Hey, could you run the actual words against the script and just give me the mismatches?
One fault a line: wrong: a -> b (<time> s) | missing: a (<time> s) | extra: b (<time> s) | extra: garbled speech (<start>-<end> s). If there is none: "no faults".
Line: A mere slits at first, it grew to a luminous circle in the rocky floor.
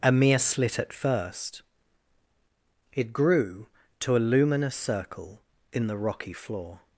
wrong: slits -> slit (0.4 s)